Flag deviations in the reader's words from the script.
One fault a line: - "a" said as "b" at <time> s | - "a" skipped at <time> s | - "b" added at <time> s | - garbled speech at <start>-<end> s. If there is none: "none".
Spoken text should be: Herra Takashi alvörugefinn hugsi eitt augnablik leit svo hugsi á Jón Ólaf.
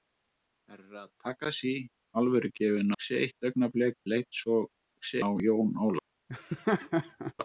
none